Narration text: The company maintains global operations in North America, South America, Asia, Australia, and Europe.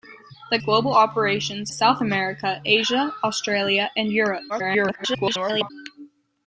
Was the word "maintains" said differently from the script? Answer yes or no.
yes